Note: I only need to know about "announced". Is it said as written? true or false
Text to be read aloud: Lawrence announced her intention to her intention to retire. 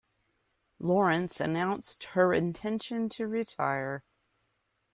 true